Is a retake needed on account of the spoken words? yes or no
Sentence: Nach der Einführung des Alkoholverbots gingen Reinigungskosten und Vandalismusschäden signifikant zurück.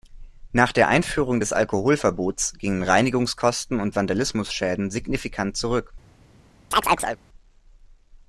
no